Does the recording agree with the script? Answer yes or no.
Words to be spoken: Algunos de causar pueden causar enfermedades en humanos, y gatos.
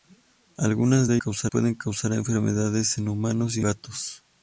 yes